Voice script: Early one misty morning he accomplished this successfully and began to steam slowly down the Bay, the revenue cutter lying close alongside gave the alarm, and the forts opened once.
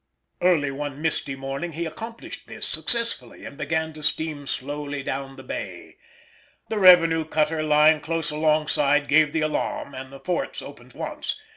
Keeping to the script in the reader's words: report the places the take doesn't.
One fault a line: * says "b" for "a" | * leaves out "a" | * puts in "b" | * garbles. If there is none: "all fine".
all fine